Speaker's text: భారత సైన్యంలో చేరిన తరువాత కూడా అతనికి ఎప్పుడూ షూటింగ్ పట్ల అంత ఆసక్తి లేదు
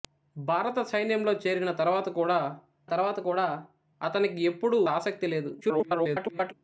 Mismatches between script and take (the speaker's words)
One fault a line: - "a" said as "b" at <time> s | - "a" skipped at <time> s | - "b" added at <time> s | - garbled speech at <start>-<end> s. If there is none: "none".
- "తరువాత కూడా" added at 2.9 s
- "షూటింగ్ పట్ల అంత" skipped at 4.8 s
- garbled speech at 5.6-6.5 s